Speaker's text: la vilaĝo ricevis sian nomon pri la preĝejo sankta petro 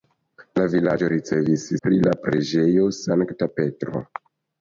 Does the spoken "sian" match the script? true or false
false